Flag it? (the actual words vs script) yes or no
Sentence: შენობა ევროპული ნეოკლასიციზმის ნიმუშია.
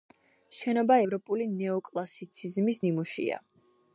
no